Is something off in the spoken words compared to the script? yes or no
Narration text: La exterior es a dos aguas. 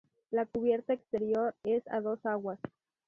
yes